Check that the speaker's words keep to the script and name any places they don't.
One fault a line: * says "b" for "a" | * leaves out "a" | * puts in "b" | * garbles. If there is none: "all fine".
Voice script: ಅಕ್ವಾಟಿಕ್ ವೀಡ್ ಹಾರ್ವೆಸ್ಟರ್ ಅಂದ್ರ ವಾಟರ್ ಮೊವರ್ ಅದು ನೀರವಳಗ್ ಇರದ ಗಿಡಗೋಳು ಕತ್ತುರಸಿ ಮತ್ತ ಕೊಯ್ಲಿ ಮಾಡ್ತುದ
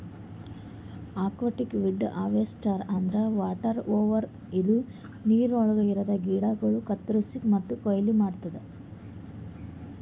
* says "ಇದು" for "ಅದು"